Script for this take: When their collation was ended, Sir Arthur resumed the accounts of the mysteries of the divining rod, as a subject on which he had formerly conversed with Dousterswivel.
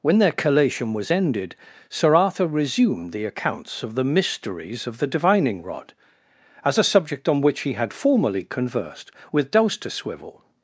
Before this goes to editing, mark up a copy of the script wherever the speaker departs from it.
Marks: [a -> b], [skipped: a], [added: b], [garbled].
When their collation was ended, Sir Arthur resumed the accounts of the mysteries of the divining rod, as a subject on which he had formerly conversed with Dousterswivel.